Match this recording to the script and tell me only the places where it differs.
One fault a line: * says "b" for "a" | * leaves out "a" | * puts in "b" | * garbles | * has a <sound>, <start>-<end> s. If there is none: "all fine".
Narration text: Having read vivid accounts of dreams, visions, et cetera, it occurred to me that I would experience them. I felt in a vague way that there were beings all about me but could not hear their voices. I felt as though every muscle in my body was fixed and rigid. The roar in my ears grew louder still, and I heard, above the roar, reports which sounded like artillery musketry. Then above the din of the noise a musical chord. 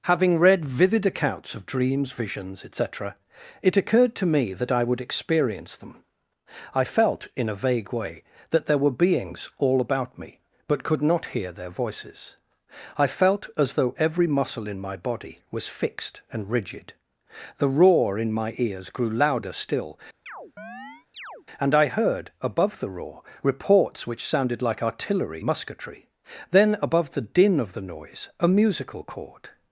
* has a chirp, 20.3-21.5 s